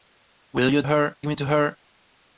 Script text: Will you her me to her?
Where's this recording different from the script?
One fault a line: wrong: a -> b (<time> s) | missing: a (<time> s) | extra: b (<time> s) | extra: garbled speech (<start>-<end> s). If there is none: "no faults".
no faults